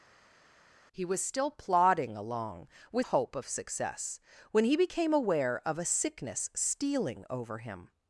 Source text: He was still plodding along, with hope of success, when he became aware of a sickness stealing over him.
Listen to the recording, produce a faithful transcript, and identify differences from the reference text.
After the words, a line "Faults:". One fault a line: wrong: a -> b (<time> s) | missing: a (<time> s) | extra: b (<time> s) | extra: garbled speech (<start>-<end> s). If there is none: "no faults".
He was still plodding along, with hope of success, when he became aware of a sickness stealing over him.
Faults:
no faults